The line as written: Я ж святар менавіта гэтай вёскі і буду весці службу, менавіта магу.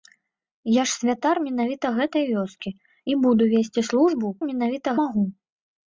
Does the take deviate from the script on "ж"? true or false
false